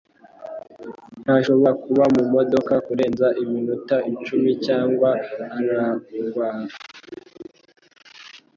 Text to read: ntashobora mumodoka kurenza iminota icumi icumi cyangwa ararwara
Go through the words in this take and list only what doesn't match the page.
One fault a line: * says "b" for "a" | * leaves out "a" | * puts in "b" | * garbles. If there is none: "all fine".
* puts in "kuba"
* leaves out "icumi"